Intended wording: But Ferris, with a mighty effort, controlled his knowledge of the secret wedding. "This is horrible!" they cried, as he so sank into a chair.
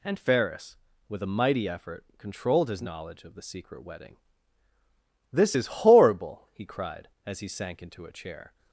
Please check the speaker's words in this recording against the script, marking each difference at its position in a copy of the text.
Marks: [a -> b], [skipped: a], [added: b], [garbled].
[But -> And] Ferris, with a mighty effort, controlled his knowledge of the secret wedding. "This is horrible!" [they -> he] cried, as he [skipped: so] sank into a chair.